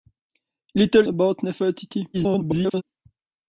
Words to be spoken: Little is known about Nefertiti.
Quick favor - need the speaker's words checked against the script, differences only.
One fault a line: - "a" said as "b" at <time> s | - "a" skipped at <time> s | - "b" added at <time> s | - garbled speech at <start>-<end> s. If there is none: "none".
- "is known" skipped at 1.1 s
- garbled speech at 2.1-2.8 s